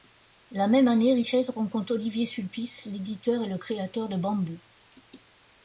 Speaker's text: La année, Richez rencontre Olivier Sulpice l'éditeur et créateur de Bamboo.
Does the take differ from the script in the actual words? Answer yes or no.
yes